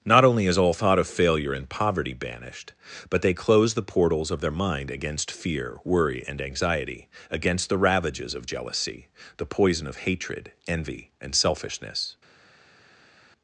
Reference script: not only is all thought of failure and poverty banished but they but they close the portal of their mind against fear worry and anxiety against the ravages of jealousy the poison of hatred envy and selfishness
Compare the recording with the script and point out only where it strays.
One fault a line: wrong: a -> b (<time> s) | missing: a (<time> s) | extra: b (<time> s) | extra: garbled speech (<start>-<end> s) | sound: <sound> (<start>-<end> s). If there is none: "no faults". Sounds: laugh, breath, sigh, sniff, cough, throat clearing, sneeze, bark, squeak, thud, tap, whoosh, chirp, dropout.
missing: but they (3.4 s)
wrong: portal -> portals (3.8 s)